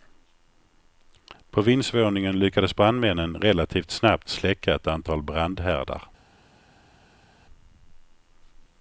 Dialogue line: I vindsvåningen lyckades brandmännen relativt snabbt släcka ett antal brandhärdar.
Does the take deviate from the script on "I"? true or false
true